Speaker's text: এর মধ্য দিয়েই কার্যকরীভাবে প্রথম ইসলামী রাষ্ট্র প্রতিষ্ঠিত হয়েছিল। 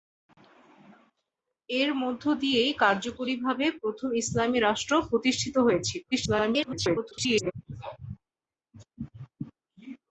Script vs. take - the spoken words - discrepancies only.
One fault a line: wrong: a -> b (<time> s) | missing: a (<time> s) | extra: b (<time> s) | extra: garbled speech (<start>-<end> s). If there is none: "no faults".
extra: garbled speech (6.1-7.5 s)